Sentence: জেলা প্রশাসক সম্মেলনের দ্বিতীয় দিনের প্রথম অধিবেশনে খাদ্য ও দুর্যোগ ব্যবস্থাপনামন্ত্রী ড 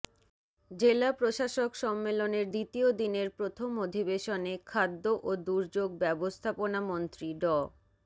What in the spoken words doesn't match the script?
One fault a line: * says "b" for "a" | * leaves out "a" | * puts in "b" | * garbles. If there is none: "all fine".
all fine